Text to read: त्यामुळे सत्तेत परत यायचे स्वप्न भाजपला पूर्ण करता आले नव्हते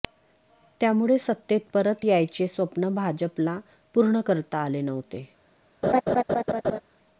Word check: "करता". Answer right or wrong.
right